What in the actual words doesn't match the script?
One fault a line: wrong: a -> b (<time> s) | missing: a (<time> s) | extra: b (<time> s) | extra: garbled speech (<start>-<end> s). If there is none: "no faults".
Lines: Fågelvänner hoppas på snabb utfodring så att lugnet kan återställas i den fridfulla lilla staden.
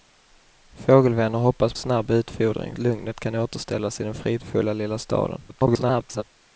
missing: på (1.7 s)
missing: så att (2.8 s)
extra: garbled speech (5.5-6.2 s)